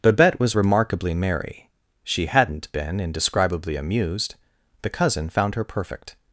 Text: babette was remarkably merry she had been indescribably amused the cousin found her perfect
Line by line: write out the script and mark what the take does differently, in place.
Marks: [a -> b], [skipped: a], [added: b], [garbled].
babette was remarkably merry she [had -> hadn't] been indescribably amused the cousin found her perfect